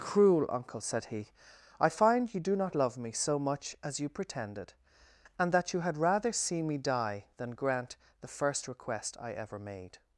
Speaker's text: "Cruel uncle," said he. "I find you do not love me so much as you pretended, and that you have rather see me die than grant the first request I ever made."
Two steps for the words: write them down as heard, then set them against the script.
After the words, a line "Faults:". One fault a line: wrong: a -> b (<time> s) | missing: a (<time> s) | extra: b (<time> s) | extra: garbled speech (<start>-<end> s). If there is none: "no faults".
"Cruel uncle," said he. "I find you do not love me so much as you pretended, and that you had rather see me die than grant the first request I ever made."
Faults:
wrong: have -> had (5.8 s)